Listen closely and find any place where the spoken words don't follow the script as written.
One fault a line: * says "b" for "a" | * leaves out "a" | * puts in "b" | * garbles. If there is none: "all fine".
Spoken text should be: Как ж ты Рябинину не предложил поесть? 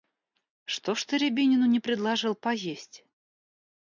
* says "Что" for "Как"